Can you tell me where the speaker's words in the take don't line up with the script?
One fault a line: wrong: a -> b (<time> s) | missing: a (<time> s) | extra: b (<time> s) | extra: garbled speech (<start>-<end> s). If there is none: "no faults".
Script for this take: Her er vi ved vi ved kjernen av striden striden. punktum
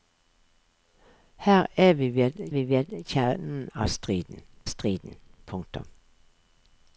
no faults